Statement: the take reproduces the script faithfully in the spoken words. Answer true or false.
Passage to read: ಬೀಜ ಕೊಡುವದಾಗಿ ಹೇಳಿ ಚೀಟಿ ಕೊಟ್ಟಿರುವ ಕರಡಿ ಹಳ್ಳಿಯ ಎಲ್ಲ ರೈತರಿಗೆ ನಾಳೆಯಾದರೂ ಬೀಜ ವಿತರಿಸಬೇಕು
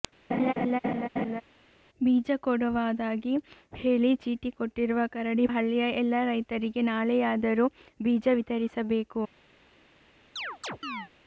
true